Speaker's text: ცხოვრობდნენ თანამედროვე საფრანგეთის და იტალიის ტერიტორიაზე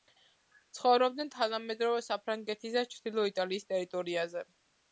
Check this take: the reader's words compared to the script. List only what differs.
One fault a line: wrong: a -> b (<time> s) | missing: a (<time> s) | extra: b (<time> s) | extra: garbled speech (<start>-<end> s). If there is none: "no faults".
extra: ჩრდილო (3.0 s)